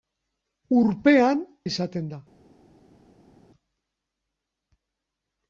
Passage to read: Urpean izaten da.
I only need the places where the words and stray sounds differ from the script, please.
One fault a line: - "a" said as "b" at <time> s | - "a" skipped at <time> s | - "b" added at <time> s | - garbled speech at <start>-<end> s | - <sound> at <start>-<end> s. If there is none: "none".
none